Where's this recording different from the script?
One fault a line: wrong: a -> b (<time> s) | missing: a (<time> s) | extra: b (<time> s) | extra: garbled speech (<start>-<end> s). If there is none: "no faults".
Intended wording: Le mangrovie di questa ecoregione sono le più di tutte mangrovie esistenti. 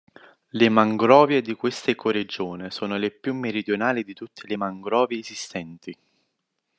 extra: meridionali (3.4 s)
extra: le (4.5 s)